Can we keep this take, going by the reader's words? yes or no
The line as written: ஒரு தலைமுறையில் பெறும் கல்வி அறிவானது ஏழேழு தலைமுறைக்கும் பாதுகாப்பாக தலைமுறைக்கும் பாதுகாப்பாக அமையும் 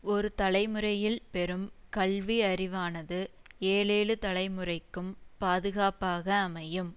no